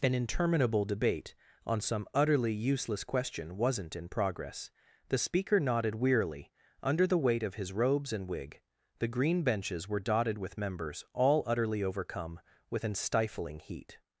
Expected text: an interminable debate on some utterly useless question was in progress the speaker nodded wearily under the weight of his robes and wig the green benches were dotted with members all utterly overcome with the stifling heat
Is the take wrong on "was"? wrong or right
wrong